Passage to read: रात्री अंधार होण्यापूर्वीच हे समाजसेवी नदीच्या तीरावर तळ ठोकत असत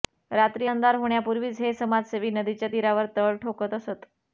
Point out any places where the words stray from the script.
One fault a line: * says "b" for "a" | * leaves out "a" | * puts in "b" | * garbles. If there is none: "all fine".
all fine